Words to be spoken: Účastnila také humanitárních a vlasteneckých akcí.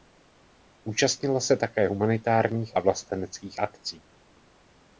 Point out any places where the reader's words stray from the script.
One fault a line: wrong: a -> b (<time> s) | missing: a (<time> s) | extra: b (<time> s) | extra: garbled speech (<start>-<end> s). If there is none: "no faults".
extra: se (1.4 s)